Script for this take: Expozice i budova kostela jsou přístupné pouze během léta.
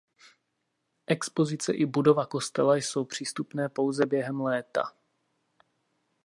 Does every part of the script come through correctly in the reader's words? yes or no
yes